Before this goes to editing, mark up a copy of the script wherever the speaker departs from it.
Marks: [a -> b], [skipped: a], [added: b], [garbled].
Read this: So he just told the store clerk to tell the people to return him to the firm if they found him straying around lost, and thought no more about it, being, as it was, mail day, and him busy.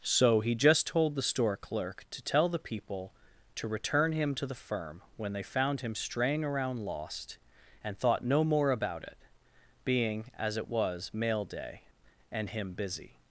So he just told the store clerk to tell the people to return him to the firm [if -> when] they found him straying around lost, and thought no more about it, being, as it was, mail day, and him busy.